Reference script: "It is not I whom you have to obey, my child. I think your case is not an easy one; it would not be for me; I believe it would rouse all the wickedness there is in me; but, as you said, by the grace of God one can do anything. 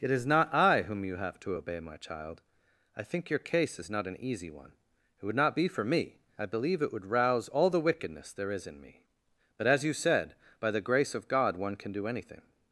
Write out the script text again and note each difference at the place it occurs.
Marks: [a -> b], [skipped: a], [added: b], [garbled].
"It is not I whom you have to obey, my child. I think your case is not an easy one; it would not be for me; I believe it would rouse all the wickedness there is in me; but, as you said, by the grace of God one can do anything.